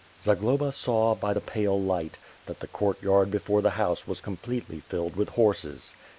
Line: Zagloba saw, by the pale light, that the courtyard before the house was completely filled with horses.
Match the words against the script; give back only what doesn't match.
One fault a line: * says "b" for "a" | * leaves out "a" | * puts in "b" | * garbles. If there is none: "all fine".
all fine